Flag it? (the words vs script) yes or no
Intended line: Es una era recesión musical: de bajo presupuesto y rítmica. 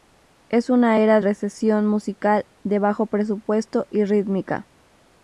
no